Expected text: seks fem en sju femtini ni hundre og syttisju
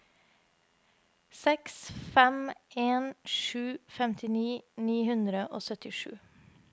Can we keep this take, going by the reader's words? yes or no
yes